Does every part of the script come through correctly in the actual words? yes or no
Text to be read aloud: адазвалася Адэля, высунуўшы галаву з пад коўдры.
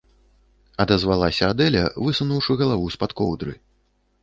yes